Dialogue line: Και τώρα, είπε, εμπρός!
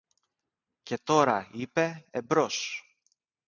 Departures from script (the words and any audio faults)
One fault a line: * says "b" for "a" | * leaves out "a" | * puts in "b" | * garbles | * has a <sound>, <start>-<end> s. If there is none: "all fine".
all fine